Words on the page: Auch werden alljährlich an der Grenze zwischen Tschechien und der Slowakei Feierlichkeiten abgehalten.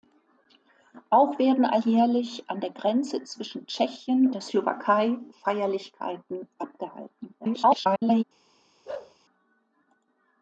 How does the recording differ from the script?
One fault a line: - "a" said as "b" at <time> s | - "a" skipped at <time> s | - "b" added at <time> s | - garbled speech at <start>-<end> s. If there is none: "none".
- "und" skipped at 4.3 s
- garbled speech at 7.4-8.2 s